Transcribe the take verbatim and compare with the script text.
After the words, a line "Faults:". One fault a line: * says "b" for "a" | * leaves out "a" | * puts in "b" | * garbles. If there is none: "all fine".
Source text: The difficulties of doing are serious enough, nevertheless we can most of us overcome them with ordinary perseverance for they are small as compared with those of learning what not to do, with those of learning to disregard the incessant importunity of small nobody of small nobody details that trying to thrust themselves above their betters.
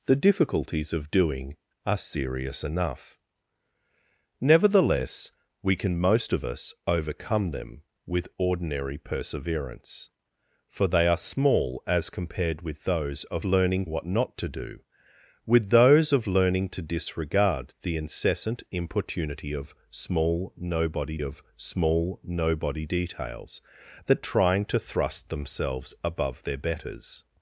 The difficulties of doing are serious enough, nevertheless we can most of us overcome them with ordinary perseverance for they are small as compared with those of learning what not to do, with those of learning to disregard the incessant importunity of small nobody of small nobody details that trying to thrust themselves above their betters.
Faults:
all fine